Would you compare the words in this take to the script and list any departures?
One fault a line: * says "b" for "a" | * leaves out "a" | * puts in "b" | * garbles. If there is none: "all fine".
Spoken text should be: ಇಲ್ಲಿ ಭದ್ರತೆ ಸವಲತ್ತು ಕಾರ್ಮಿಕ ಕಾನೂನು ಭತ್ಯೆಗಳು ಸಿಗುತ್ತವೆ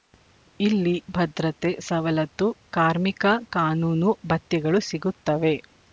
all fine